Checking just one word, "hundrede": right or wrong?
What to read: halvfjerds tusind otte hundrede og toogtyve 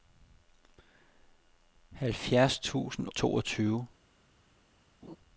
wrong